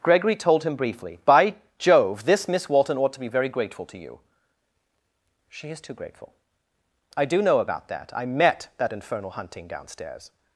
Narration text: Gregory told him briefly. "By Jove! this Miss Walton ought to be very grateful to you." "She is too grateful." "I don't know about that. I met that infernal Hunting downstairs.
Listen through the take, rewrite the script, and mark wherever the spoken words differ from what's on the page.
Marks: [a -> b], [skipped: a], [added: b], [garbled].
Gregory told him briefly. "By Jove! this Miss Walton ought to be very grateful to you." "She is too grateful." "I [don't -> do] know about that. I met that infernal Hunting downstairs.